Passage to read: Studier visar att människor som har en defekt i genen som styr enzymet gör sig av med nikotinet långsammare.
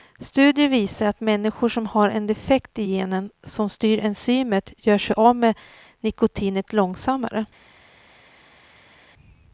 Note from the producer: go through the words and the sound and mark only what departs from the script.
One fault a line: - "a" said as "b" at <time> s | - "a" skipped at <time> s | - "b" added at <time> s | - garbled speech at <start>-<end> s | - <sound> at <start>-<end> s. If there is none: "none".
none